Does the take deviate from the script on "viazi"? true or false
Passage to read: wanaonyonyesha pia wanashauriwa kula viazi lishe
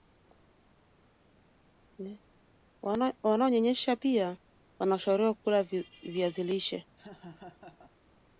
false